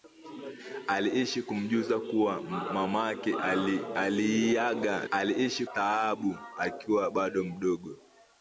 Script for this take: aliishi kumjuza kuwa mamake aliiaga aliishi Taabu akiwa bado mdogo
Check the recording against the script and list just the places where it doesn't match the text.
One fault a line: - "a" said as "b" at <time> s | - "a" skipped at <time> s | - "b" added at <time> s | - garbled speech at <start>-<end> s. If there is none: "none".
none